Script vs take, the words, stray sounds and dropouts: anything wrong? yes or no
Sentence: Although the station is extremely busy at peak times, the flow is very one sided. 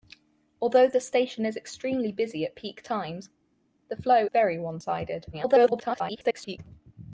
yes